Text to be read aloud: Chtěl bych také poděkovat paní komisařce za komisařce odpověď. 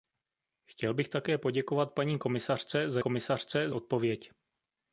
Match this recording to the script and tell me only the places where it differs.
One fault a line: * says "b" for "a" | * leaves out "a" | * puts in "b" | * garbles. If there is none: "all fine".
all fine